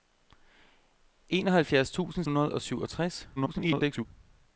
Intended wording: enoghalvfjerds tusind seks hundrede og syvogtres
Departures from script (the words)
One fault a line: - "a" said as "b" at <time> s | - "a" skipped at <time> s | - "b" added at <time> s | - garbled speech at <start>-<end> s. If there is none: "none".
- "seks" skipped at 2.2 s
- garbled speech at 3.4-4.1 s